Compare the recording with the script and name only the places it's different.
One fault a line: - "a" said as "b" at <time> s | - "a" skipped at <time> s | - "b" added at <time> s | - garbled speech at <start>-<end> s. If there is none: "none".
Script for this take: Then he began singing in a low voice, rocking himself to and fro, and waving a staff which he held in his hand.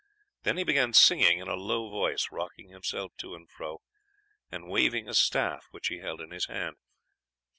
none